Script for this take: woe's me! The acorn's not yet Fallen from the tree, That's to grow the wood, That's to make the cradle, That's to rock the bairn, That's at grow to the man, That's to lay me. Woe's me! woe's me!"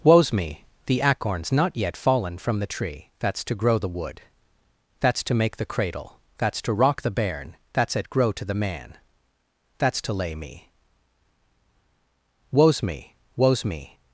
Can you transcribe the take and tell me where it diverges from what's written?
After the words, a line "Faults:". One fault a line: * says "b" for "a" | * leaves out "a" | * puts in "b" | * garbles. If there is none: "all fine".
woe's me! The acorn's not yet Fallen from the tree, That's to grow the wood, That's to make the cradle, That's to rock the bairn, That's at grow to the man, That's to lay me. Woe's me! woe's me!"
Faults:
all fine